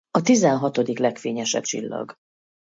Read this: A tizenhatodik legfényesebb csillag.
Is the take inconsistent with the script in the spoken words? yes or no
no